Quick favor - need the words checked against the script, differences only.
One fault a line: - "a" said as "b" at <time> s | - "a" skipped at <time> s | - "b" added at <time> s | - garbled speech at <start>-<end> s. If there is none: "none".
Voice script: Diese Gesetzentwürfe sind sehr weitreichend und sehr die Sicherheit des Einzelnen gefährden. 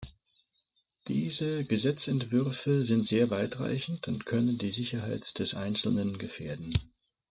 - "sehr" said as "können" at 4.2 s